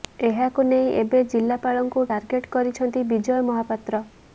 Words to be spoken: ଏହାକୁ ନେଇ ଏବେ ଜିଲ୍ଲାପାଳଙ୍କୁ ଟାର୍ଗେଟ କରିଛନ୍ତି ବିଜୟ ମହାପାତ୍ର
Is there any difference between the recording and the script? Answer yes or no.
no